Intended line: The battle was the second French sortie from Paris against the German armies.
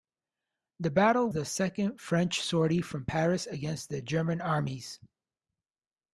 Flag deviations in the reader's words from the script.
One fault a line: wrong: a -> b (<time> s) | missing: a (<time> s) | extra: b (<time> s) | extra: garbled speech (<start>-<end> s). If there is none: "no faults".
missing: was (1.3 s)